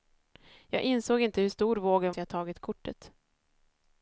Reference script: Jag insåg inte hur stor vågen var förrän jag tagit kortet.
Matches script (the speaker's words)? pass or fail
fail